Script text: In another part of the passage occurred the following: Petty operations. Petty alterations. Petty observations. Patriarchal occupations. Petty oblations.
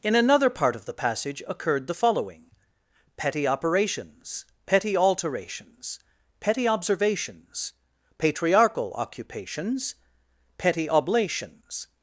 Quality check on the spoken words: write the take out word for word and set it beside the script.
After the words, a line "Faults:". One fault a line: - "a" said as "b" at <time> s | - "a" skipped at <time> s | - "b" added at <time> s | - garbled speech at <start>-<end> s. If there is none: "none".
In another part of the passage occurred the following: Petty operations. Petty alterations. Petty observations. Patriarchal occupations. Petty oblations.
Faults:
none